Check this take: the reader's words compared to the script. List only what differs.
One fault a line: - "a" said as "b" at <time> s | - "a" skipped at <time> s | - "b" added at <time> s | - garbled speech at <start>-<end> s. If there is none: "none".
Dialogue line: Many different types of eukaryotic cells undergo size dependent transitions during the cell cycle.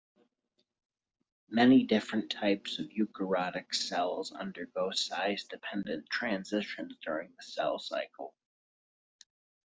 none